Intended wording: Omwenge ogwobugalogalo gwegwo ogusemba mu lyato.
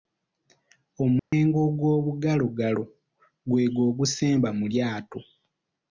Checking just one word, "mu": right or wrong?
right